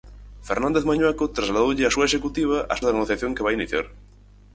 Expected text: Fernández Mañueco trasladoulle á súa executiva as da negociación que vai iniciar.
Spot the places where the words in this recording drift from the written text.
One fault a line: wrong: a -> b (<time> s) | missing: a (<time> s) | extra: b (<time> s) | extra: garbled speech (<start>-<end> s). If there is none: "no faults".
no faults